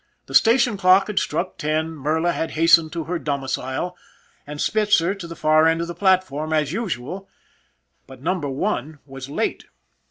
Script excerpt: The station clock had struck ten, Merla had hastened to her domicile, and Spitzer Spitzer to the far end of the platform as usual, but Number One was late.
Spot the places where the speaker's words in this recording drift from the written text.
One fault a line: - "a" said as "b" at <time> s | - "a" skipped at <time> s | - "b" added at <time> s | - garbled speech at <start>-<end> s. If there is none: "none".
- "Spitzer" skipped at 5.1 s